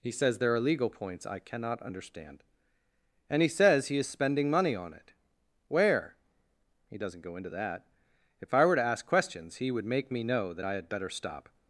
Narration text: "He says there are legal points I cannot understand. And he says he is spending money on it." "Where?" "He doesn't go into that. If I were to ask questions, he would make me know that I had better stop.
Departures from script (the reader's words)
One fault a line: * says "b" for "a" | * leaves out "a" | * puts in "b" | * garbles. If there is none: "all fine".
all fine